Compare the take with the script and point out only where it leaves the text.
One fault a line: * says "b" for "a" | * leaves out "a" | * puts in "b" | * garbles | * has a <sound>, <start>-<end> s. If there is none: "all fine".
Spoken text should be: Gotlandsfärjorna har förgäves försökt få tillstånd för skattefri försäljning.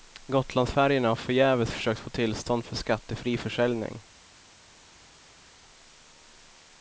all fine